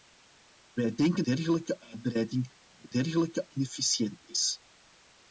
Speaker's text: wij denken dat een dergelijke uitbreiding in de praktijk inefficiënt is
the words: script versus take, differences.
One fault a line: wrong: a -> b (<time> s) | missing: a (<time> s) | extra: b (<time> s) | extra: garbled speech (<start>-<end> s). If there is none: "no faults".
missing: dat een (1.2 s)
wrong: praktijk -> dergelijke (2.9 s)